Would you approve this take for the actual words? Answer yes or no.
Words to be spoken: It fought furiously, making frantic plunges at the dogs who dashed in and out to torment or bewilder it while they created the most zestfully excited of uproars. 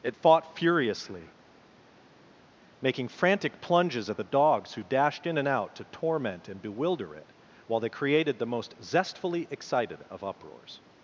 no